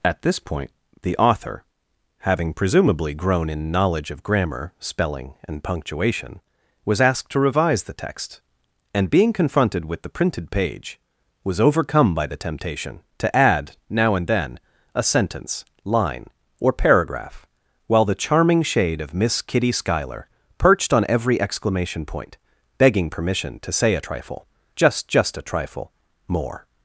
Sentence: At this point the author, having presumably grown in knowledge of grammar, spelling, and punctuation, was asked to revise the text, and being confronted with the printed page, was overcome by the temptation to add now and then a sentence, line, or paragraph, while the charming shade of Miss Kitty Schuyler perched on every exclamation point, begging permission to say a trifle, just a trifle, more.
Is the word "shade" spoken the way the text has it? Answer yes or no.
yes